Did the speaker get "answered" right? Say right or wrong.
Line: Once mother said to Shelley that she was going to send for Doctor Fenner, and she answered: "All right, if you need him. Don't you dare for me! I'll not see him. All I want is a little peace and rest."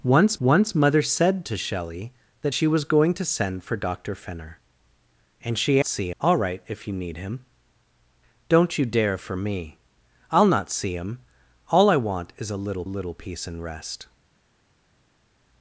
wrong